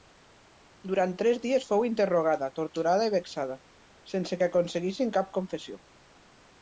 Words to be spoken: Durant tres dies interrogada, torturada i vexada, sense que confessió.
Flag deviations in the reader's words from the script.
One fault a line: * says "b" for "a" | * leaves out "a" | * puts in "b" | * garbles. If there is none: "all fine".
* puts in "fou"
* puts in "aconseguissin cap"